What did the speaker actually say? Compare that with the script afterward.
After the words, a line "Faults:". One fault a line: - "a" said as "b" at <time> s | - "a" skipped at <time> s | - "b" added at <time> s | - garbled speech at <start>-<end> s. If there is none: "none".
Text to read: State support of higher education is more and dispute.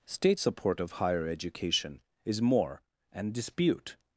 State support of higher education is more and dispute.
Faults:
none